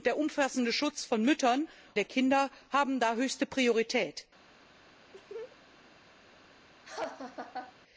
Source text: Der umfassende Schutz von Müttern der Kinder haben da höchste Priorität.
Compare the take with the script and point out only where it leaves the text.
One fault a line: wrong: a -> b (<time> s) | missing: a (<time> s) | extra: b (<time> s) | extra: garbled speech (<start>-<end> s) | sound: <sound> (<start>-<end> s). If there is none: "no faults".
sound: laugh (5.1-5.6 s)
sound: laugh (6.8-7.7 s)